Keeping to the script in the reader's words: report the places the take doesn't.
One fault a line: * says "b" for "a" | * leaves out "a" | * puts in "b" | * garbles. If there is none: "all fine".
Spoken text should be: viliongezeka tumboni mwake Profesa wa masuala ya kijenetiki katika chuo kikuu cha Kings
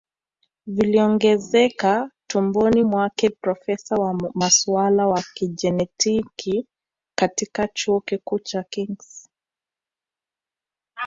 all fine